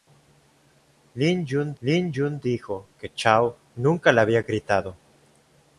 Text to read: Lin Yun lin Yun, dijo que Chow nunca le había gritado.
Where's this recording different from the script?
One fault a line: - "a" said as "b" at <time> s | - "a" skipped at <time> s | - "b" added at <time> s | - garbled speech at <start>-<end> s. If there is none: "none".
none